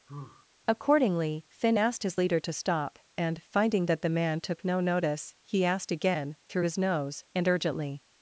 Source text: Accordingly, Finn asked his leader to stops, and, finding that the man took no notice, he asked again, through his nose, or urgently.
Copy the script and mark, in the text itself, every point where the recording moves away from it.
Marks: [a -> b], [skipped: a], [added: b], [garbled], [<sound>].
[sigh] Accordingly, Finn asked his leader to [stops, -> stop] and, finding that the man took no notice, he asked again, through his nose, [or -> and] urgently.